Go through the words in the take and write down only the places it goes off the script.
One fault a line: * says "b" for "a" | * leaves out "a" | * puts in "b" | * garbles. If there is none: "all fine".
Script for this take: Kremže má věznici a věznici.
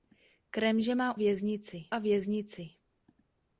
all fine